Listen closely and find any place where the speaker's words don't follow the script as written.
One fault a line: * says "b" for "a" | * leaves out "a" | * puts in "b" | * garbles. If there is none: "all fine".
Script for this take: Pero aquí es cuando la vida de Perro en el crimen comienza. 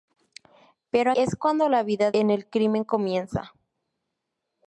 * leaves out "aquí"
* leaves out "de Perro"